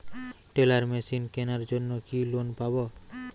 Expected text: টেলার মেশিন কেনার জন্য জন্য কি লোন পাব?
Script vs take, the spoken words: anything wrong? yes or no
yes